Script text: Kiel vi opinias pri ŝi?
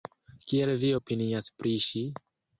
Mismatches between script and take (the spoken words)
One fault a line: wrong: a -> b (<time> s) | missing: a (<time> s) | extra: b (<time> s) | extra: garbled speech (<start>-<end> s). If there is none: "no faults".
no faults